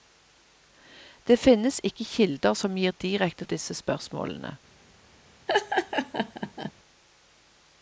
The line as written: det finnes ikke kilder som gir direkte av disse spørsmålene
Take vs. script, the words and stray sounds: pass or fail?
fail